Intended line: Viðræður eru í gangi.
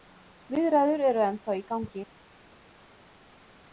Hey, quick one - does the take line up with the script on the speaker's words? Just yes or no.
no